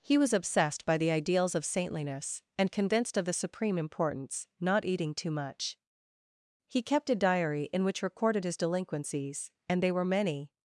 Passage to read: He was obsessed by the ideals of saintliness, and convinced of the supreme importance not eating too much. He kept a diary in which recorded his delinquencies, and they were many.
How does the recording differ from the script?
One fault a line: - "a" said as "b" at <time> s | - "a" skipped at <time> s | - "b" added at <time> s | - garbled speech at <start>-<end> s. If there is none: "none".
none